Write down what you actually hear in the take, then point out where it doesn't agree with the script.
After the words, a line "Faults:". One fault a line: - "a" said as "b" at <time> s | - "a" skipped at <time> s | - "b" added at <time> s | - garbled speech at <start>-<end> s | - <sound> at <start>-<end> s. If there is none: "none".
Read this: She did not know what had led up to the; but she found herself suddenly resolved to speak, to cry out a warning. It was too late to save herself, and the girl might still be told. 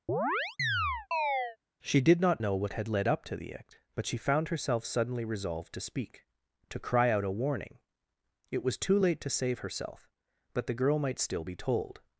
She did not know what had led up to the act; but she found herself suddenly resolved to speak, to cry out a warning. It was too late to save herself, but the girl might still be told.
Faults:
- chirp at 0.1-1.6 s
- "act" added at 3.5 s
- "and" said as "but" at 10.5 s